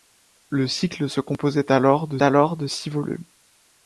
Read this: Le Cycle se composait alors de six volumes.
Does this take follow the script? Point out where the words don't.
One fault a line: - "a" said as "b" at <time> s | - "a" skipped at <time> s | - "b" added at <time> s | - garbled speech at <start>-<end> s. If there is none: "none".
- "alors de" added at 2.2 s